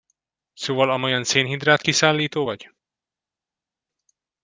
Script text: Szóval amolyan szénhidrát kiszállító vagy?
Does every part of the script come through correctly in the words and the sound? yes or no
yes